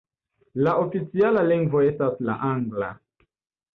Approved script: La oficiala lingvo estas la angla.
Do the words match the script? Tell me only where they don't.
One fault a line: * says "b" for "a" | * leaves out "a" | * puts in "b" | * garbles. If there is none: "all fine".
all fine